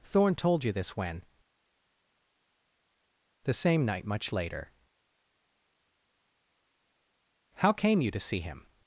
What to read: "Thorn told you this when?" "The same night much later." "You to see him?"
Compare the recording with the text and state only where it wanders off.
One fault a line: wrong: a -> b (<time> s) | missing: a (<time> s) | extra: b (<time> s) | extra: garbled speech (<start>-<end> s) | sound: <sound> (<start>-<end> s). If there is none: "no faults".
extra: How came (7.5 s)